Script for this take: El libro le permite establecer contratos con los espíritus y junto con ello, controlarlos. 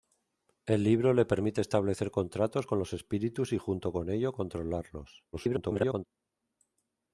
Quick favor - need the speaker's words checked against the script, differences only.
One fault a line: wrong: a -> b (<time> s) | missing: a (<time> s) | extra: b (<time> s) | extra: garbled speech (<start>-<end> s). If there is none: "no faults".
extra: garbled speech (5.3-6.1 s)